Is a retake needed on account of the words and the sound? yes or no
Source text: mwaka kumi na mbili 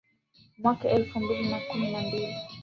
yes